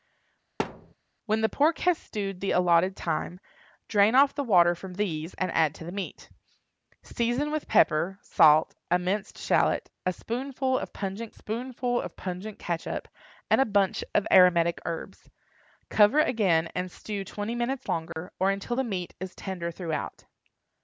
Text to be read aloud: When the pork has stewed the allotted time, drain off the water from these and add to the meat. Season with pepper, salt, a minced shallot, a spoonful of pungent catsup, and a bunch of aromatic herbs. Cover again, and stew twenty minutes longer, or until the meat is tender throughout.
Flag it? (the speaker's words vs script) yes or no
yes